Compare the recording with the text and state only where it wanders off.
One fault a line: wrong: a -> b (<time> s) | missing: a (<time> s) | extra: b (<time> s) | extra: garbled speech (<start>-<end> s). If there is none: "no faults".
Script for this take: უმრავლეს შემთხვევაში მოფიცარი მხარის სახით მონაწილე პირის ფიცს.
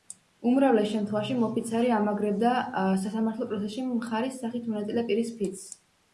extra: ამაგრებდა სასამართლო პროცესში (2.0 s)